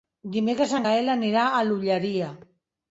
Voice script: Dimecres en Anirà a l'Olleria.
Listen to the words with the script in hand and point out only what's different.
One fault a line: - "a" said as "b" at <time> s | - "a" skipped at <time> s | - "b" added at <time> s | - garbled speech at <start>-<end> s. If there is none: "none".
- "Gaël" added at 0.9 s